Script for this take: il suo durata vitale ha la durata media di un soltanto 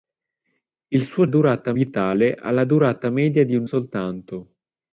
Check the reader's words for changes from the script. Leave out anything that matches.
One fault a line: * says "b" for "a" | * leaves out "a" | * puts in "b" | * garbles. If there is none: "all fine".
all fine